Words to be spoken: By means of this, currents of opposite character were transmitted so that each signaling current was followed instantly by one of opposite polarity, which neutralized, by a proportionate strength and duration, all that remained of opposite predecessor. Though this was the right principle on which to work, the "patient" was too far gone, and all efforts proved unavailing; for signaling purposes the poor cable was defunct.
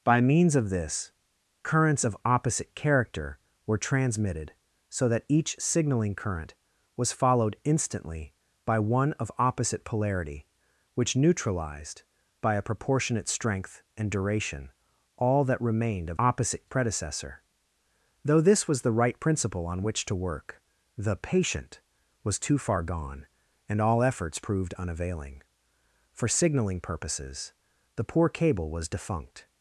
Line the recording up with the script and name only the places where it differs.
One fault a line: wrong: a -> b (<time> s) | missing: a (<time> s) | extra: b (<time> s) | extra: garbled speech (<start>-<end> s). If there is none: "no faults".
no faults